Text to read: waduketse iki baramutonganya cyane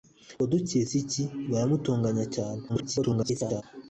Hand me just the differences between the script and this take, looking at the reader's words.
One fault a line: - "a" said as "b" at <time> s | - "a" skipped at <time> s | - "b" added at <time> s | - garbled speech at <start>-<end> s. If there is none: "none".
- garbled speech at 2.7-3.6 s